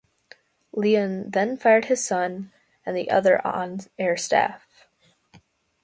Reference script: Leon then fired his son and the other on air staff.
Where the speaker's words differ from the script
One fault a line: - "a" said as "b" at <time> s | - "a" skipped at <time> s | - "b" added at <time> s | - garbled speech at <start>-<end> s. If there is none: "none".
none